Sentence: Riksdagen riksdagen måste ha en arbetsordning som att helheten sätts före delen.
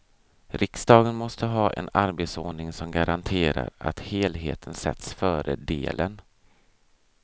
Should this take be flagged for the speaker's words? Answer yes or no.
yes